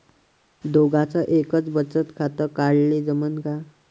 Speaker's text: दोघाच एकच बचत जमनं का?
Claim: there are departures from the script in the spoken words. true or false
true